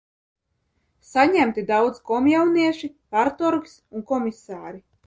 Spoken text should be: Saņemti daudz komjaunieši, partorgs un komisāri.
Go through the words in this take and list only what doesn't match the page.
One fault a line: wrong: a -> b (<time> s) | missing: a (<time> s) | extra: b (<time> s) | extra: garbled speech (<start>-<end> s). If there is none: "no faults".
no faults